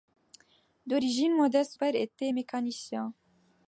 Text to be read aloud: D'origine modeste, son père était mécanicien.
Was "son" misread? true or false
true